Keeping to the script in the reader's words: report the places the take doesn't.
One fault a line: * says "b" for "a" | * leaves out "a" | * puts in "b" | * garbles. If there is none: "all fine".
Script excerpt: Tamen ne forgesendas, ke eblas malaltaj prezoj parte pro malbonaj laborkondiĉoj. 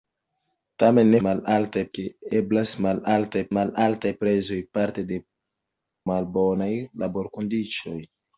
* says "malaltaj" for "forgesendas"
* puts in "malaltaj"
* leaves out "pro"